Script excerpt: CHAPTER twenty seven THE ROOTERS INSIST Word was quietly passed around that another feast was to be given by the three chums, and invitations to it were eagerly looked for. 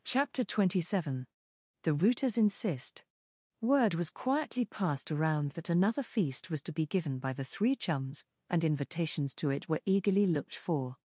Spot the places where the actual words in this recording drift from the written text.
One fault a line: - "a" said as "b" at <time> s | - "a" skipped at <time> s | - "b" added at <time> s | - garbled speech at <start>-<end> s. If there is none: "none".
none